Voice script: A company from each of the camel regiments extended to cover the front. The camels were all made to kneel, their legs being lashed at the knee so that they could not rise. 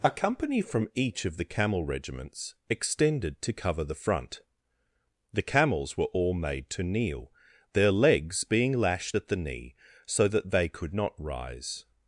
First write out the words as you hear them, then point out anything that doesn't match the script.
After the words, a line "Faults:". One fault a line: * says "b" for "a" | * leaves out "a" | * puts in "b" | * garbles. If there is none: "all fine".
A company from each of the camel regiments extended to cover the front. The camels were all made to kneel, their legs being lashed at the knee so that they could not rise.
Faults:
all fine